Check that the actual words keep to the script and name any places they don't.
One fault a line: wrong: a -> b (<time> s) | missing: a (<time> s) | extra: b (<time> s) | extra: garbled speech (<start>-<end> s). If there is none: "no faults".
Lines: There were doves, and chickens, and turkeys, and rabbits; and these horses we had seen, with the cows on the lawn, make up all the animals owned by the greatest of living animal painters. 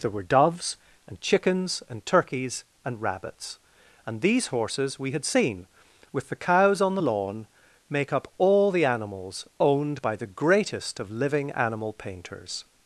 no faults